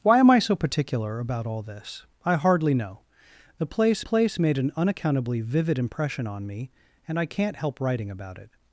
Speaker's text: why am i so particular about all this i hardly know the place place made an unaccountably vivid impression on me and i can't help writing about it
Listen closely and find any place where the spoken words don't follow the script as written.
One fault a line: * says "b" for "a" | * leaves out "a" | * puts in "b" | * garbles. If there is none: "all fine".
all fine